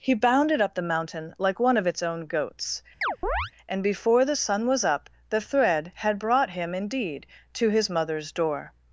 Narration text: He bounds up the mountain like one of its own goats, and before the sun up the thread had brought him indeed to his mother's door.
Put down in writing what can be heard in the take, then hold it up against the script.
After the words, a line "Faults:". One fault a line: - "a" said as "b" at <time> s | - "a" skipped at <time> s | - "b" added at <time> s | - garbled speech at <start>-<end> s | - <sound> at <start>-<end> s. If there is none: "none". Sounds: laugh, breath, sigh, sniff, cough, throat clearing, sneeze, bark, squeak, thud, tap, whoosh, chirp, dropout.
He bounded up the mountain like one of its own goats, and before the sun was up the thread had brought him indeed to his mother's door.
Faults:
- "bounds" said as "bounded" at 0.1 s
- chirp at 3.0-3.5 s
- "was" added at 4.7 s